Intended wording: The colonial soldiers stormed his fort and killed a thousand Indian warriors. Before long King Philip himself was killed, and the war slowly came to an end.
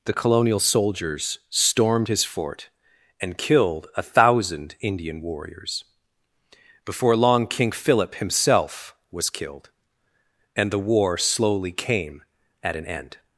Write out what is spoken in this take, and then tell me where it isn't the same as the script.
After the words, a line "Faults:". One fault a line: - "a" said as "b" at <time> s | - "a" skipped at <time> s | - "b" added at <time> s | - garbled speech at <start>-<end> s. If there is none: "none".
The colonial soldiers stormed his fort and killed a thousand Indian warriors. Before long King Philip himself was killed, and the war slowly came at an end.
Faults:
- "to" said as "at" at 12.6 s